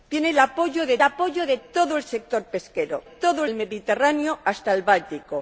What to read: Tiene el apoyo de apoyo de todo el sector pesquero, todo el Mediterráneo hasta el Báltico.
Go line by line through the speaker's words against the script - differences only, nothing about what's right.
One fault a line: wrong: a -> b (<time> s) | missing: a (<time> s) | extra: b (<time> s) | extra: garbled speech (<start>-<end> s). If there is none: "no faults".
no faults